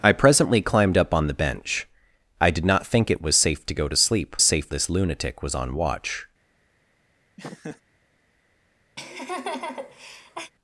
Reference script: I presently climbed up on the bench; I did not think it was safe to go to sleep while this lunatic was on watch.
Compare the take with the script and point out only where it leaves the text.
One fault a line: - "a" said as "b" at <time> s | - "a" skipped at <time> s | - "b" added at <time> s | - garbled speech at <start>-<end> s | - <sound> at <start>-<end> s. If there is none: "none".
- "while" said as "safe" at 4.4 s
- laugh at 7.4-7.8 s
- laugh at 9.0-10.5 s